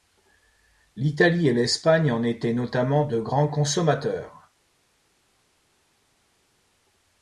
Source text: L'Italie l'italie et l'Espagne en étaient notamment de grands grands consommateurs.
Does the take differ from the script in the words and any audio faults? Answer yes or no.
yes